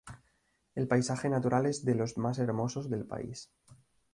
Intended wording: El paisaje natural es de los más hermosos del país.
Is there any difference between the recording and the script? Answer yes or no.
no